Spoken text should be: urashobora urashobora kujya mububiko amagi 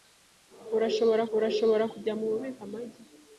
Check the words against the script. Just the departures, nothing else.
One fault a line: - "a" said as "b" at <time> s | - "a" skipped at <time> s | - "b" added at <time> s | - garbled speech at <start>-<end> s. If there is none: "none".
none